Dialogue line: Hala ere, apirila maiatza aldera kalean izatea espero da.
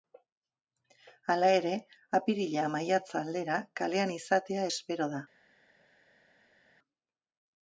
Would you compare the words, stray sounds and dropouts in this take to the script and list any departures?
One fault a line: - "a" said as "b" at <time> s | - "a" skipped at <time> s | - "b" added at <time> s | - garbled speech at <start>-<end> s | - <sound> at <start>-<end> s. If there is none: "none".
none